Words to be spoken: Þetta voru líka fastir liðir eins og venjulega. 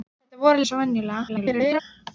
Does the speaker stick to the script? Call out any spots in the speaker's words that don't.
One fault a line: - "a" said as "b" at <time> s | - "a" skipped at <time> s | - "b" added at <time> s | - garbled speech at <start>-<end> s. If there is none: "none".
- "líka fastir liðir" skipped at 0.6 s
- garbled speech at 1.3-1.8 s